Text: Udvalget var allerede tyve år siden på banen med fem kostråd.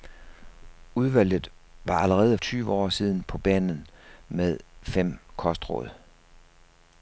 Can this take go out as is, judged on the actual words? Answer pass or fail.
pass